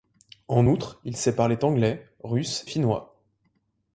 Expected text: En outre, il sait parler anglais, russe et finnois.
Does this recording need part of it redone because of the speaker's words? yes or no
yes